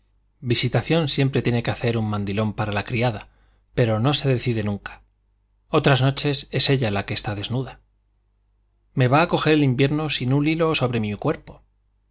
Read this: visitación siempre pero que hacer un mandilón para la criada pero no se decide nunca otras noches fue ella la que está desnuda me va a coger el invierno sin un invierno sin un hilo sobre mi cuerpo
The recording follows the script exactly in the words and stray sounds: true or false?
false